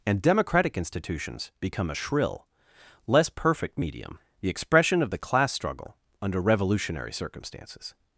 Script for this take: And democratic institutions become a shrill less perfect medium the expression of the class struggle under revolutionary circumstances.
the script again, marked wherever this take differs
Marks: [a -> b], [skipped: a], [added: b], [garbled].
And democratic institutions become a shrill less perfect medium the expression of the class struggle under revolutionary circumstances.